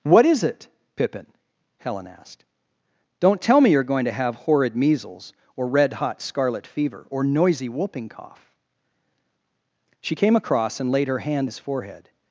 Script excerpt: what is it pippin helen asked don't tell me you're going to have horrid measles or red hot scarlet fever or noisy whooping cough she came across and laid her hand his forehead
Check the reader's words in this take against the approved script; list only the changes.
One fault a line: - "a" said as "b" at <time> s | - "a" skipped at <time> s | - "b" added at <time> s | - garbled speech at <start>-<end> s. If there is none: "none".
none